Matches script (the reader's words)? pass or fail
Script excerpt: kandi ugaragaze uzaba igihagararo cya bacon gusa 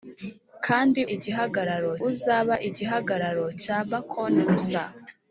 fail